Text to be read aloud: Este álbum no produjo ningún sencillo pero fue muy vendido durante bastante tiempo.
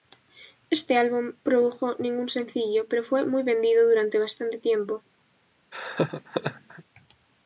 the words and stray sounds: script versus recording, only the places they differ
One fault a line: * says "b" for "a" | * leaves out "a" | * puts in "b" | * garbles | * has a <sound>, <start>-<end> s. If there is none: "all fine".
* leaves out "no"
* has a laugh, 5.7-6.8 s